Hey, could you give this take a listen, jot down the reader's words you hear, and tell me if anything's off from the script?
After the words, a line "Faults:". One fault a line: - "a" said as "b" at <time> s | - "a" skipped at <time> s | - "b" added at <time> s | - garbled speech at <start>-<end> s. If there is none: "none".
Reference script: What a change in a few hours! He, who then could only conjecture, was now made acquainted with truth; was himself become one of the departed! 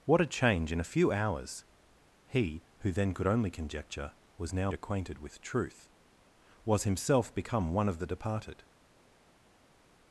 What a change in a few hours! He, who then could only conjecture, was now acquainted with truth; was himself become one of the departed!
Faults:
- "made" skipped at 4.7 s